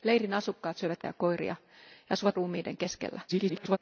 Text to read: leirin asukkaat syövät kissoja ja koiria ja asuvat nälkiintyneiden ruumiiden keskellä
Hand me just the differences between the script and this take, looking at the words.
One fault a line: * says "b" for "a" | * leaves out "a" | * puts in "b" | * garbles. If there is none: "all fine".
* leaves out "kissoja"
* leaves out "nälkiintyneiden"
* garbles